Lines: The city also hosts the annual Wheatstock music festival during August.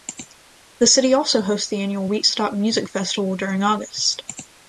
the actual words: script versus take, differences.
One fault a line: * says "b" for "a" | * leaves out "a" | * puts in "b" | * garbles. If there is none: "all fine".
all fine